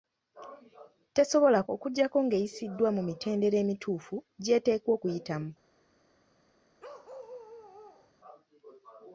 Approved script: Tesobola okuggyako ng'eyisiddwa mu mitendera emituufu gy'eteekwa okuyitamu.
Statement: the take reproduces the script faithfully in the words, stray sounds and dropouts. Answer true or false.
false